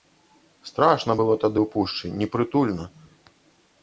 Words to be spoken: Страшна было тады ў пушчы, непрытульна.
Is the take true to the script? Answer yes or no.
yes